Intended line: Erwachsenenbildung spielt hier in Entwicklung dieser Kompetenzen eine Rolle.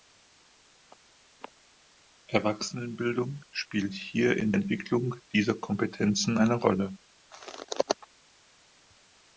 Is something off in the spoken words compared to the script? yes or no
no